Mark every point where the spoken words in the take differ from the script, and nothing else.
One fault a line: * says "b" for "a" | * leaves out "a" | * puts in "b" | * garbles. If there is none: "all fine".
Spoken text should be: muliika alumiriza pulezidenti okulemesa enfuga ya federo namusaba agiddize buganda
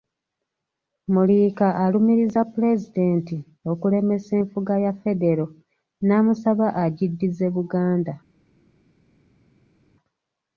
all fine